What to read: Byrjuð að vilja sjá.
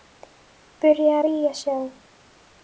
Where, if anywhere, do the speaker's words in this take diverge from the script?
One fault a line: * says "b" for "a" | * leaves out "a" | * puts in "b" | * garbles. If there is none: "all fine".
* leaves out "að"